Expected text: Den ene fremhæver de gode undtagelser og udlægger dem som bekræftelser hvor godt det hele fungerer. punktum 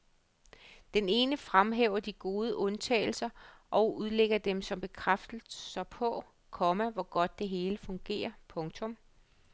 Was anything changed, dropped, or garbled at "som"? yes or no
no